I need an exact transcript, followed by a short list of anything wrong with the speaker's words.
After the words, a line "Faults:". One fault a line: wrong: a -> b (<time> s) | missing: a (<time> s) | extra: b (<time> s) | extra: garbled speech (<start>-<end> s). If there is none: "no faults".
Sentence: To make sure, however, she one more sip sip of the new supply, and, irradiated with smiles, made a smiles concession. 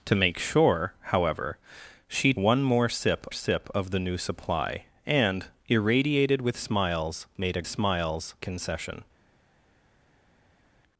To make sure, however, she one more sip sip of the new supply, and, irradiated with smiles, made a smiles concession.
Faults:
no faults